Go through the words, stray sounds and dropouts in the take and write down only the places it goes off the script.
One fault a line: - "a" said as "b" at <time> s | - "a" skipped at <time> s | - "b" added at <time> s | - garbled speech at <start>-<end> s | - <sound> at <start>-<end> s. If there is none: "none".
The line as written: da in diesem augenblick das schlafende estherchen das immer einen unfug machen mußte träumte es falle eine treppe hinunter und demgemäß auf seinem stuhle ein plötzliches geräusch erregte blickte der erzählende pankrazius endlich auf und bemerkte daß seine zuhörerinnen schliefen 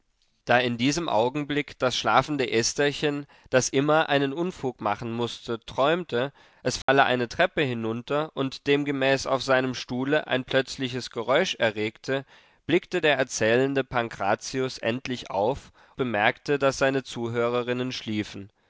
- dropout at 6.8-6.9 s
- "und" skipped at 15.7 s